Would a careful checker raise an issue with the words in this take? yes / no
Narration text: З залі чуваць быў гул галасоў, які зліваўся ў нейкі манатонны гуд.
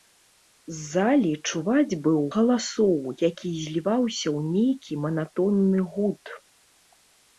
yes